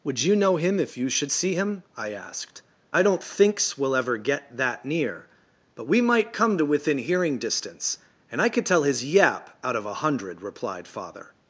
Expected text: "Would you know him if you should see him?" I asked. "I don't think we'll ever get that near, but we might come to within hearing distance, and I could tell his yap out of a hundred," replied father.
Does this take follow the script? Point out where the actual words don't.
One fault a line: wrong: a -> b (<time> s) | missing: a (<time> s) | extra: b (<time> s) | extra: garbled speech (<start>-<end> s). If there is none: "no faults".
wrong: think -> thinks (3.2 s)